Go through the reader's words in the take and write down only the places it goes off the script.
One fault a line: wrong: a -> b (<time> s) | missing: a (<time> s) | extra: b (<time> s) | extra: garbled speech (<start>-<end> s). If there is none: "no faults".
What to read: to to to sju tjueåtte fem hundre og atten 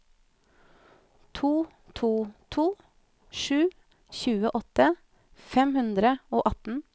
no faults